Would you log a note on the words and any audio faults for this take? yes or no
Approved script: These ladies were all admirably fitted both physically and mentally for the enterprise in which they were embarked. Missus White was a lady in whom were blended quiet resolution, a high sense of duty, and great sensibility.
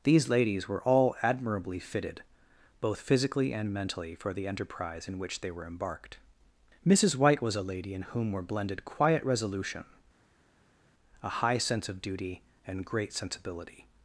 no